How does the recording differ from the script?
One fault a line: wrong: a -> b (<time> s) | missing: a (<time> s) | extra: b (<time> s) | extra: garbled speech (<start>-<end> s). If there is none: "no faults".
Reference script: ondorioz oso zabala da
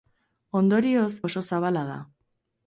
no faults